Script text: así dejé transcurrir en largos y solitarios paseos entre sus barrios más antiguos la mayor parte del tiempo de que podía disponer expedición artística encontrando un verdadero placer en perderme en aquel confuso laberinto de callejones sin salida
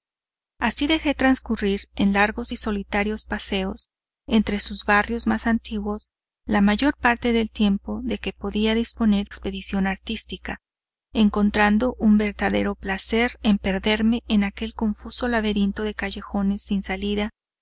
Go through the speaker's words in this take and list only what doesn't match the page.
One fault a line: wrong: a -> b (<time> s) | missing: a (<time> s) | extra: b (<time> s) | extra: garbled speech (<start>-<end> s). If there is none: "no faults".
no faults